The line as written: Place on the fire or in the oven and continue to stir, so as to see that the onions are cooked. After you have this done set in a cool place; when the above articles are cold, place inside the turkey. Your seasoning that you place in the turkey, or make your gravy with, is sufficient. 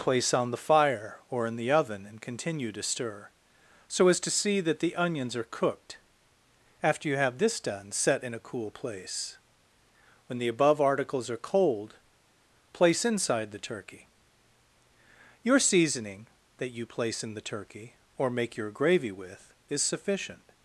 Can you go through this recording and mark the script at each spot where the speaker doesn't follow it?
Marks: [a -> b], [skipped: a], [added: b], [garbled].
Place on the fire or in the oven and continue to stir, so as to see that the onions are cooked. After you have this done set in a cool place; when the above articles are cold, place inside the turkey. Your seasoning that you place in the turkey, or make your gravy with, is sufficient.